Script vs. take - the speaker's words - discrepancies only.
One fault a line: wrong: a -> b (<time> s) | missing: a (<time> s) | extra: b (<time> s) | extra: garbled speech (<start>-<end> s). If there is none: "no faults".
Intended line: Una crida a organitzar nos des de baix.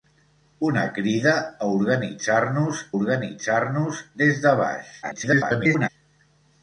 extra: organitzar nos (2.9 s)
extra: garbled speech (5.0-5.9 s)